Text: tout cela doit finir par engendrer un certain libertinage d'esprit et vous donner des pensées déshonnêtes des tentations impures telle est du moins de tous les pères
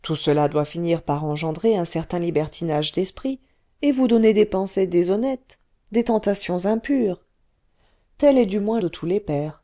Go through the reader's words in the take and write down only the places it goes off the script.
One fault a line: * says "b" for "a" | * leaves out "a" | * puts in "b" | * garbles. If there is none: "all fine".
all fine